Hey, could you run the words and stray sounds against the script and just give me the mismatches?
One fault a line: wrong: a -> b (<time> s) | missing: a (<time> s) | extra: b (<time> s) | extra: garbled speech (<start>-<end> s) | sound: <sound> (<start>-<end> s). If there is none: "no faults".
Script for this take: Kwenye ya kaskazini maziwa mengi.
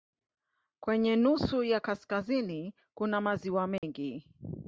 extra: nusu (1.1 s)
extra: kuna (2.9 s)
sound: dropout (3.8-3.8 s)